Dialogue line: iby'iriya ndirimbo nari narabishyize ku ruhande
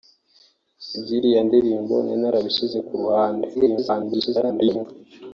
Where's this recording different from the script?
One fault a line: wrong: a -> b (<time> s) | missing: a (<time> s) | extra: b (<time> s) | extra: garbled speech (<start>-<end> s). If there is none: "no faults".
extra: garbled speech (3.5-4.9 s)